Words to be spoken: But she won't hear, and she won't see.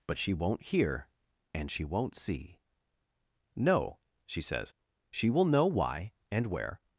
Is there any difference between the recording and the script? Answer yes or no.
yes